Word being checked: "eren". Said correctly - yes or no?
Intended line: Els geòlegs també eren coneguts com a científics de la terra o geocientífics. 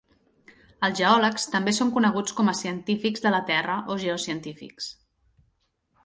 no